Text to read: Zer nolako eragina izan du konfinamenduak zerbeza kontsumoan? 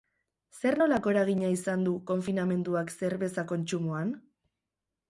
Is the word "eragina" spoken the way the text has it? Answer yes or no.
yes